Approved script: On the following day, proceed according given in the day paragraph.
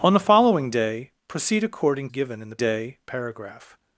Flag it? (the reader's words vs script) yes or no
no